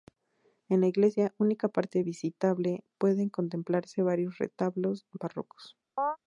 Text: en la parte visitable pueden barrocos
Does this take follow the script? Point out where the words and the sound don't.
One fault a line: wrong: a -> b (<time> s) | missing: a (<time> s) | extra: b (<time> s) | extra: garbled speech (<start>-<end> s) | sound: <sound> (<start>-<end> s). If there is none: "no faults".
extra: iglesia única (0.9 s)
extra: contemplarse varios retablos (3.3 s)
sound: chirp (6.0-6.2 s)